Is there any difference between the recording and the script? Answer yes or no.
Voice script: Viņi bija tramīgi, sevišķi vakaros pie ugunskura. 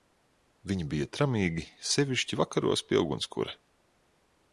no